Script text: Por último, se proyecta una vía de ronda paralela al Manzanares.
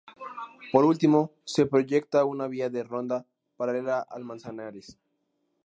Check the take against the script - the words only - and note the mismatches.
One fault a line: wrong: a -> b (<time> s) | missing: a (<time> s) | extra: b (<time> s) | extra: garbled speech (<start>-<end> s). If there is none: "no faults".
no faults